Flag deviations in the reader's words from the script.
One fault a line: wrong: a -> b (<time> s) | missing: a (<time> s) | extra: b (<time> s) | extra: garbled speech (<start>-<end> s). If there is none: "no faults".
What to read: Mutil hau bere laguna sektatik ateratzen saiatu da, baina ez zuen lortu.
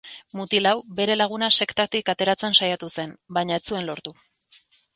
wrong: da -> zen (3.0 s)